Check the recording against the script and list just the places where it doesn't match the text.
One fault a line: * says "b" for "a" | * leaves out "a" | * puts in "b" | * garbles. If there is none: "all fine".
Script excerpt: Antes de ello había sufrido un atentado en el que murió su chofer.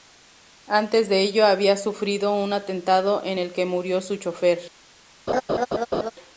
all fine